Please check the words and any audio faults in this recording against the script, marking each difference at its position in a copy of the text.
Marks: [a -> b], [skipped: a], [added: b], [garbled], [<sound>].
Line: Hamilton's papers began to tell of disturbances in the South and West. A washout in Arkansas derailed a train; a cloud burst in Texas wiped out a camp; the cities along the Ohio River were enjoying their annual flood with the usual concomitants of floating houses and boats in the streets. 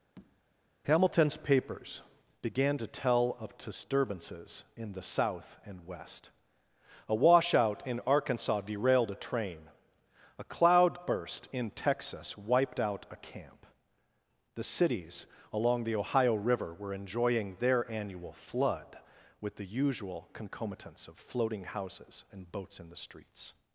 [tap] Hamilton's papers began to tell of disturbances in the South and West. A washout in Arkansas derailed a train; a cloud burst in Texas wiped out a camp; the cities along the Ohio River were enjoying their annual flood with the usual concomitants of floating houses and boats in the streets.